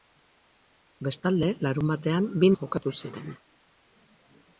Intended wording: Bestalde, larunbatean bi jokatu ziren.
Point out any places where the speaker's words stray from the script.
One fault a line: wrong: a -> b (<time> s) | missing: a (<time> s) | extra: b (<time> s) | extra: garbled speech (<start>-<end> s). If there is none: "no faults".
no faults